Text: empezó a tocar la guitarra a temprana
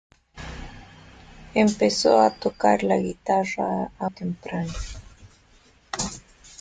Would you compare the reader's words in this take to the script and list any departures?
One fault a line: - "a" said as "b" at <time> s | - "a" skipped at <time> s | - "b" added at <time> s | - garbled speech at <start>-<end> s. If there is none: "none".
none